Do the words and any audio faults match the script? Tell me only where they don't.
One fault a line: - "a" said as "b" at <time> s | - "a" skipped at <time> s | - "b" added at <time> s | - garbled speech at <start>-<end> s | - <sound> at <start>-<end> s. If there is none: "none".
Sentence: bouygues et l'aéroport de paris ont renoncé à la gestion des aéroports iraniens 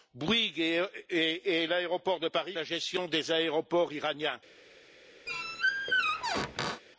- "ont renoncé à" skipped at 2.6 s
- squeak at 5.3-6.8 s